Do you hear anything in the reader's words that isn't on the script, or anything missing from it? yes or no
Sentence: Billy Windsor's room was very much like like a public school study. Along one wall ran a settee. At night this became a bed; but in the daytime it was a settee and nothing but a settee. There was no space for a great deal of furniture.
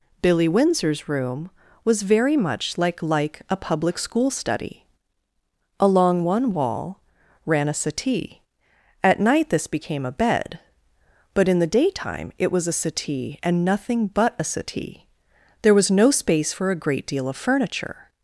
no